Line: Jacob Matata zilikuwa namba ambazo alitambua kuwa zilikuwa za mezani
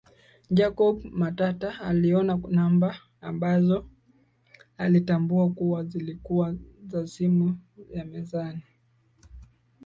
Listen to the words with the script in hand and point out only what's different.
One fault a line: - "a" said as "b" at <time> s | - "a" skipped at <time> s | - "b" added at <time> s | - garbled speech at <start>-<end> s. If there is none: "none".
- "zilikuwa" said as "aliona" at 1.8 s
- "simu ya" added at 7.0 s